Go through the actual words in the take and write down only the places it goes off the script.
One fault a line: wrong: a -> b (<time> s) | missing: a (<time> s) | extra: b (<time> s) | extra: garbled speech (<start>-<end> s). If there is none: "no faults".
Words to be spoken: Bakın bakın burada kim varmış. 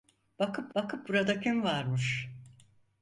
no faults